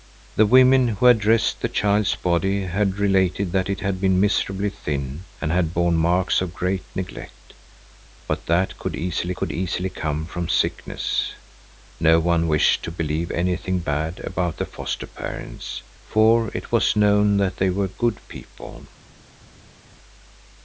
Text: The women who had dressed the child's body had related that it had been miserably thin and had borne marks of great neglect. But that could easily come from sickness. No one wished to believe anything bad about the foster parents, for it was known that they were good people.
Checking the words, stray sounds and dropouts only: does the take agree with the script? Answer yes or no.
no